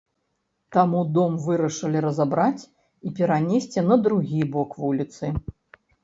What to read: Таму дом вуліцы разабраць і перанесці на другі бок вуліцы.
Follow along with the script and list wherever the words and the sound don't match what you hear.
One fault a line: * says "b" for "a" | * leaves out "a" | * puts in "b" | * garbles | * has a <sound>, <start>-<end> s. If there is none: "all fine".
* says "вырашылі" for "вуліцы"